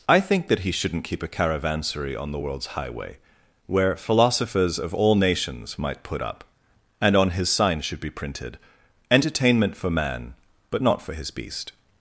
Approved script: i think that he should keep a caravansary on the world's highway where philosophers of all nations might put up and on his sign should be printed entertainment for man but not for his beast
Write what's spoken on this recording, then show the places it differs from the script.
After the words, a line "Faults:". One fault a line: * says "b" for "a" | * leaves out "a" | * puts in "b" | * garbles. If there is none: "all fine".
i think that he shouldn't keep a caravansary on the world's highway where philosophers of all nations might put up and on his sign should be printed entertainment for man but not for his beast
Faults:
* says "shouldn't" for "should"